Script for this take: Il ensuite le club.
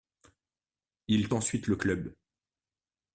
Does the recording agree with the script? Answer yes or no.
yes